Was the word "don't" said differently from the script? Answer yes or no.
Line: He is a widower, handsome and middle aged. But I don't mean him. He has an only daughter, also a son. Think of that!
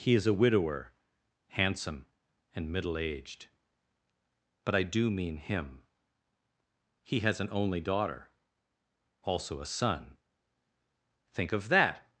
yes